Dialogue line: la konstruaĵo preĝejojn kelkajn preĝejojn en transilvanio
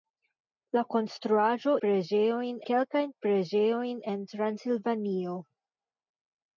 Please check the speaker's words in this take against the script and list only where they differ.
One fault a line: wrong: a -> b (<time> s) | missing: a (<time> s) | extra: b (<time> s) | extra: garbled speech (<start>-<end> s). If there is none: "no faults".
no faults